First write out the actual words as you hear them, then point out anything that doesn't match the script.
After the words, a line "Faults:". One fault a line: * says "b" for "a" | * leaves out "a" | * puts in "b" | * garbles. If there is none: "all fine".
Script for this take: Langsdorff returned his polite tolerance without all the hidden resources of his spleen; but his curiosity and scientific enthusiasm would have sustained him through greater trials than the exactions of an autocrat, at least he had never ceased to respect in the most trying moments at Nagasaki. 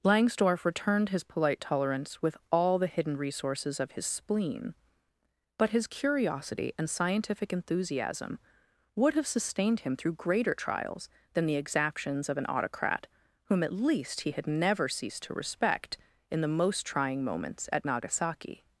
Langsdorff returned his polite tolerance with all the hidden resources of his spleen; but his curiosity and scientific enthusiasm would have sustained him through greater trials than the exactions of an autocrat, whom at least he had never ceased to respect in the most trying moments at Nagasaki.
Faults:
* says "with" for "without"
* puts in "whom"